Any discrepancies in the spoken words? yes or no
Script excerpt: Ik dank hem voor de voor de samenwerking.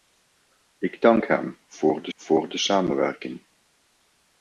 no